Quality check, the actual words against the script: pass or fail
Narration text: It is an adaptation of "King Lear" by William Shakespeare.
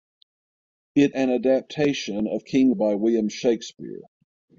fail